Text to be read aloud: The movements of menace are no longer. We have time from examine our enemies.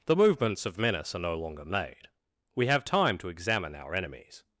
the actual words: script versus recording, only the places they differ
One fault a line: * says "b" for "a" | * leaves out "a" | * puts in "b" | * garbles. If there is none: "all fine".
* puts in "made"
* says "to" for "from"